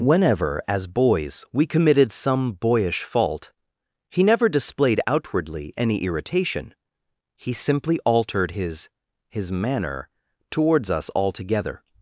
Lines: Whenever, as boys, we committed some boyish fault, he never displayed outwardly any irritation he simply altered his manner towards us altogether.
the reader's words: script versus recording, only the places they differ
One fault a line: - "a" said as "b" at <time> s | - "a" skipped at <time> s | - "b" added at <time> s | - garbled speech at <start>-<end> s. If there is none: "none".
- "his" added at 9.3 s